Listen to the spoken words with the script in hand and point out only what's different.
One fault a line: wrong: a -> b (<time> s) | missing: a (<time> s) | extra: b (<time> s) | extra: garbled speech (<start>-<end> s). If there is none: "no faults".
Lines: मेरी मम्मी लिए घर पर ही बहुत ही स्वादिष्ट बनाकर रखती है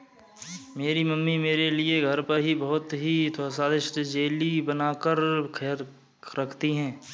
extra: मेरे (1.4 s)
extra: जेली (4.0 s)